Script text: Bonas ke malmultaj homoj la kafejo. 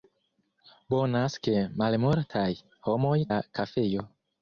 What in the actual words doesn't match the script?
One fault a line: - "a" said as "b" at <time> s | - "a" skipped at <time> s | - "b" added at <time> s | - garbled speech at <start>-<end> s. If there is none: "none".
none